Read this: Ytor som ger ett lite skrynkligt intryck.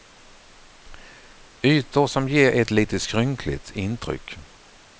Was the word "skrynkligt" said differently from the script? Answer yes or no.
no